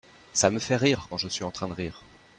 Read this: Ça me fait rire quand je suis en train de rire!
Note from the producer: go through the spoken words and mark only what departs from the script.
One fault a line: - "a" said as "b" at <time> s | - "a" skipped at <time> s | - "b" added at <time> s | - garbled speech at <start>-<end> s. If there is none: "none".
none